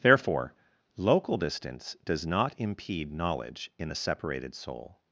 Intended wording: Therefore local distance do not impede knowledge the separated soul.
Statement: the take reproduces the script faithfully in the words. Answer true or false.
false